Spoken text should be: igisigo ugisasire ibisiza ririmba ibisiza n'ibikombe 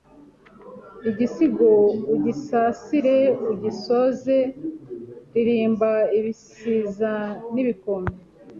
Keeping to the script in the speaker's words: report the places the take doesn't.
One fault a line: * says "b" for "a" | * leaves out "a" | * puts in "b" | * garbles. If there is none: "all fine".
* says "ugisoze" for "ibisiza"